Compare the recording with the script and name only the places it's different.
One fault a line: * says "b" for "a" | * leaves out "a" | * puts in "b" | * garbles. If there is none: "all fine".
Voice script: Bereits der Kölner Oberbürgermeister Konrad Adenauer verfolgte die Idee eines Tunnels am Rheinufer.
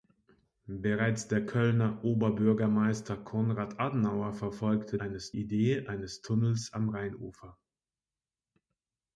* says "eines" for "die"